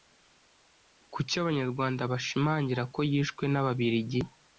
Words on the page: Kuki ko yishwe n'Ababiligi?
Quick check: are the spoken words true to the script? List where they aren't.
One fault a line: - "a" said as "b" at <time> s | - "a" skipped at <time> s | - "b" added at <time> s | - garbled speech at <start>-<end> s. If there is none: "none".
- "abanyarwanda bashimangira" added at 1.4 s